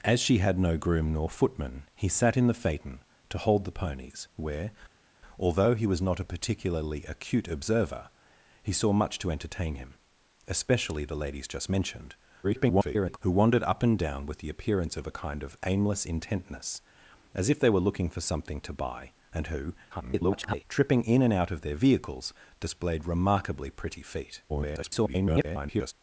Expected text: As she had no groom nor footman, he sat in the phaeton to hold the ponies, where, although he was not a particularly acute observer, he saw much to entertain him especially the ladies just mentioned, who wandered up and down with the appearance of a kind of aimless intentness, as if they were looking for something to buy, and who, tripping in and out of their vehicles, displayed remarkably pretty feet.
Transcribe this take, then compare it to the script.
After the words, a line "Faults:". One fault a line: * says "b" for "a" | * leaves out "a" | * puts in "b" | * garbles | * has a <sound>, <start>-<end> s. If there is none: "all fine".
As she had no groom nor footman, he sat in the phaeton to hold the ponies, where, although he was not a particularly acute observer, he saw much to entertain him especially the ladies just mentioned, [garbled] who wandered up and down with the appearance of a kind of aimless intentness, as if they were looking for something to buy, and who, [garbled] tripping in and out of their vehicles, displayed remarkably pretty feet. [garbled]
Faults:
* garbles
* garbles
* garbles